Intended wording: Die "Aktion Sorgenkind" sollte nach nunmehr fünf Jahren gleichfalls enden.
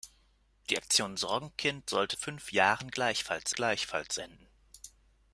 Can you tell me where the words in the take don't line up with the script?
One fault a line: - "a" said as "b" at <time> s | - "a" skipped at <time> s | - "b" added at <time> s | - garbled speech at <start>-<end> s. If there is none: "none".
- "nach nunmehr" skipped at 2.2 s
- "gleichfalls" added at 3.5 s